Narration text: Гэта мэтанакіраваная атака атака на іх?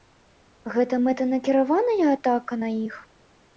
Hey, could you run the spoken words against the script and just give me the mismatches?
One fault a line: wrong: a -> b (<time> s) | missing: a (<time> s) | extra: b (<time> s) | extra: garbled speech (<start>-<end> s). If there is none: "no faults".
missing: атака (2.5 s)